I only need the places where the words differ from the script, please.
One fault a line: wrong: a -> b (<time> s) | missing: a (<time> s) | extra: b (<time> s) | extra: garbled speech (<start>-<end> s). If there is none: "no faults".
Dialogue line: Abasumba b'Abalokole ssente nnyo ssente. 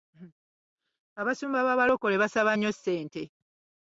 wrong: ssente -> basaba (2.2 s)